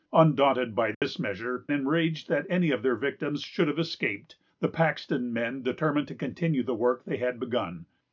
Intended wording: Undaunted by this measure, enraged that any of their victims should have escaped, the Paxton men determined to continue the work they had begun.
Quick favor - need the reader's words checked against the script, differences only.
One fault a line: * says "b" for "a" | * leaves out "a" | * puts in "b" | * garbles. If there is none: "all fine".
all fine